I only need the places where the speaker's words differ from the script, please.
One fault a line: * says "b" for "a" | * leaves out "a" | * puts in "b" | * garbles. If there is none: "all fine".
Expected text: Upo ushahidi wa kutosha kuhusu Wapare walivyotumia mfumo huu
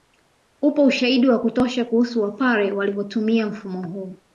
all fine